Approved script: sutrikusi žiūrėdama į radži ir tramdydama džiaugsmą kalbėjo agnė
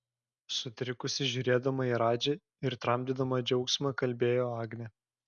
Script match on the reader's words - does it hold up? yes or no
yes